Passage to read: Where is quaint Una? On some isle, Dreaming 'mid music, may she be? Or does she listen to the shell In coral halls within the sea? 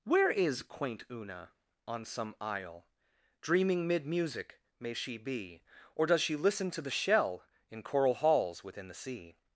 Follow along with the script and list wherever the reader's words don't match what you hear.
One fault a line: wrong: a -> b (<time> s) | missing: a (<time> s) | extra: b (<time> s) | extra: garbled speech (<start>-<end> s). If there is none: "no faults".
no faults